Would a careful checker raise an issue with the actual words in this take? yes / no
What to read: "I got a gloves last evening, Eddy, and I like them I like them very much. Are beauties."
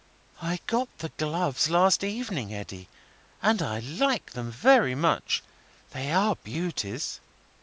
yes